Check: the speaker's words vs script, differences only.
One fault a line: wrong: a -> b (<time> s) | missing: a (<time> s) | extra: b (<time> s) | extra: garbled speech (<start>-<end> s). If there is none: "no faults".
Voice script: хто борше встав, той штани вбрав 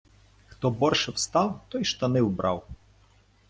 no faults